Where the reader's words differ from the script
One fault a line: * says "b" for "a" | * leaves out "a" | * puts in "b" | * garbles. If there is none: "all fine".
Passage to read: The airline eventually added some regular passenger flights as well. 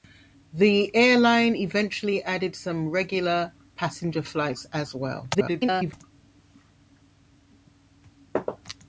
* garbles